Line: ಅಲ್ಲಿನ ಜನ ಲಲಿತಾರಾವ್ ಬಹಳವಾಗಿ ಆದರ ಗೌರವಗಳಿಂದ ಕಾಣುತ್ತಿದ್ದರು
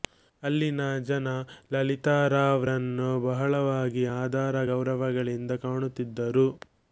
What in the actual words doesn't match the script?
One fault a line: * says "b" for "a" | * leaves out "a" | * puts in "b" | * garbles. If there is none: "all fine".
* puts in "ರನ್ನು"